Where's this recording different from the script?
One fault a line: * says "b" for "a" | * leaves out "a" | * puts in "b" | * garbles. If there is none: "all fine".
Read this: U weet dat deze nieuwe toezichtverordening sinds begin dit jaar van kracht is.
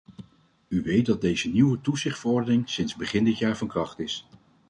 all fine